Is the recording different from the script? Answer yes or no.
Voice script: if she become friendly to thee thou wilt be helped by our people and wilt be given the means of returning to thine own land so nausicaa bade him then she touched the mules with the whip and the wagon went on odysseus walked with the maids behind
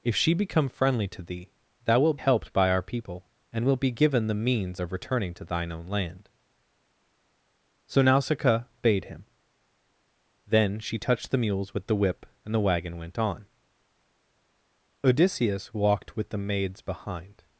yes